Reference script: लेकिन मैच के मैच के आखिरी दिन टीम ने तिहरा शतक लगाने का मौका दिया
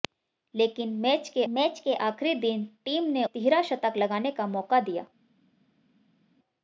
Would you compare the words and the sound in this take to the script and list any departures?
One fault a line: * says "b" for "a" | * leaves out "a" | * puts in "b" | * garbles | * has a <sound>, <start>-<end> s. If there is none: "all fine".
all fine